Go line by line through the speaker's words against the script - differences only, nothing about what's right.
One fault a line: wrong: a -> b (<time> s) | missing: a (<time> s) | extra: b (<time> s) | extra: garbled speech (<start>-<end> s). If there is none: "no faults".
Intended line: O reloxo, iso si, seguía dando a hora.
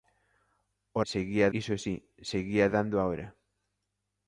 wrong: reloxo -> seguía (1.1 s)